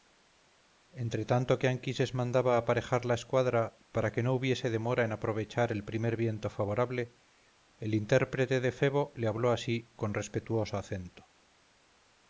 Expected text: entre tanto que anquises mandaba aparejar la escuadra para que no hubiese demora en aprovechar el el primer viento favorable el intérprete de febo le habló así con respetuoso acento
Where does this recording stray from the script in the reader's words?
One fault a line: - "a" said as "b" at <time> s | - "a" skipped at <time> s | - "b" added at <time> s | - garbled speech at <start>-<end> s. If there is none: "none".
- "el" skipped at 5.8 s